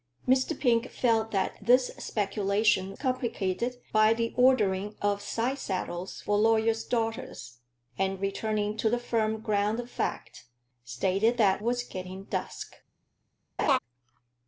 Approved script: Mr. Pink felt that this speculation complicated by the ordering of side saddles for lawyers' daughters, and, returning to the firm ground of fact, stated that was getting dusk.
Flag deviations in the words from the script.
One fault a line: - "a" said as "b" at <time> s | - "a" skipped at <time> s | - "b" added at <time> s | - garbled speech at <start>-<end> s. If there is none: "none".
none